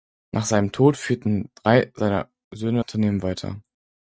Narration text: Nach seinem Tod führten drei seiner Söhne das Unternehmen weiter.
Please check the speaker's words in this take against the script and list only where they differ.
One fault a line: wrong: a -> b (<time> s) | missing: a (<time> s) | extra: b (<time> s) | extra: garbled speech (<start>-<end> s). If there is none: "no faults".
missing: das (2.8 s)